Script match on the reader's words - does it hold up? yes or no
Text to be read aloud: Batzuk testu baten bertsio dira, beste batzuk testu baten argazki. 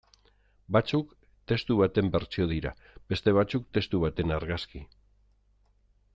yes